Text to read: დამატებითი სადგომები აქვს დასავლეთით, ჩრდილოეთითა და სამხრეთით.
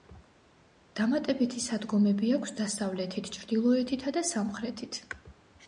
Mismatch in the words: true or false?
false